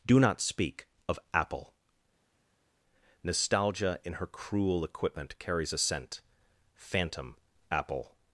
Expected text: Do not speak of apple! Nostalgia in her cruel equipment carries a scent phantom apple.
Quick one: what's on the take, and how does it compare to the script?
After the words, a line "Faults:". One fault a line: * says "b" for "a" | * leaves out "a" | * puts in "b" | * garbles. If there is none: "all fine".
Do not speak of apple! Nostalgia in her cruel equipment carries a scent phantom apple.
Faults:
all fine